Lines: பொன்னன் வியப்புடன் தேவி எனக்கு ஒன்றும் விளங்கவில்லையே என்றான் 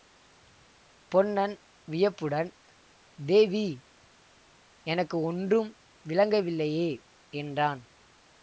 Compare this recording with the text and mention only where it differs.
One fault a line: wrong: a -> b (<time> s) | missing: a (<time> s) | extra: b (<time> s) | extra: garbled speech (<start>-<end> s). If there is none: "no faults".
no faults